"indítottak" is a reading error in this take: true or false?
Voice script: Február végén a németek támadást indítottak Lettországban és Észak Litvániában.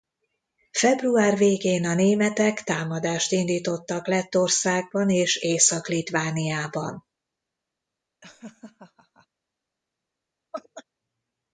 false